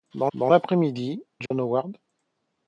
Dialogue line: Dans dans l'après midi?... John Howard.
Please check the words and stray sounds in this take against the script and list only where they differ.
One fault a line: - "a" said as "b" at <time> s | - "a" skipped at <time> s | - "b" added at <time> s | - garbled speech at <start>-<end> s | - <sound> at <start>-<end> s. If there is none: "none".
- dropout at 1.5-1.5 s